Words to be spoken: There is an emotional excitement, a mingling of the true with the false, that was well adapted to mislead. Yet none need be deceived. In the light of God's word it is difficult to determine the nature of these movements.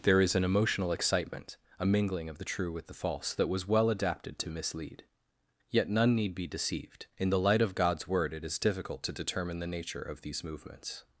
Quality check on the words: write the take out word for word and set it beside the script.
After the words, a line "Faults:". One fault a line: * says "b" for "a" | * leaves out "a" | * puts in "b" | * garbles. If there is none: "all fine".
There is an emotional excitement, a mingling of the true with the false, that was well adapted to mislead. Yet none need be deceived. In the light of God's word it is difficult to determine the nature of these movements.
Faults:
all fine